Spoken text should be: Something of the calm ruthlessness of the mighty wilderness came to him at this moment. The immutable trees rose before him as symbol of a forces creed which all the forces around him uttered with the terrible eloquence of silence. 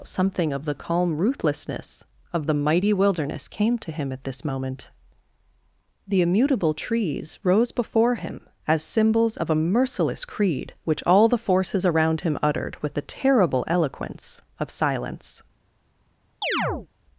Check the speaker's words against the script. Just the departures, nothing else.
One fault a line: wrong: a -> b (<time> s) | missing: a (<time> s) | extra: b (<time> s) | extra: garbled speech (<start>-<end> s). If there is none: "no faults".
wrong: symbol -> symbols (8.8 s)
wrong: forces -> merciless (9.6 s)